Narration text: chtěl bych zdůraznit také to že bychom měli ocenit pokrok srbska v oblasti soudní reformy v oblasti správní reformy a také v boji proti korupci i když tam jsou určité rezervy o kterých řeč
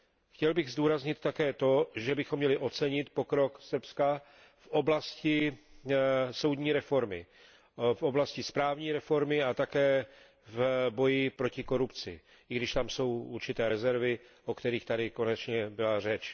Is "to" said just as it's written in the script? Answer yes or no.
yes